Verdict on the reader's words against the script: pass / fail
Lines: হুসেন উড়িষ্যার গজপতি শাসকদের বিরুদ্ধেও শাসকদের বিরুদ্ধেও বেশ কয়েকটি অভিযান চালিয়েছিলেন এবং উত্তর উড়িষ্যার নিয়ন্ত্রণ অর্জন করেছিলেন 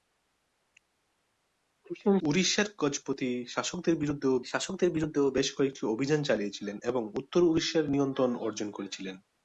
pass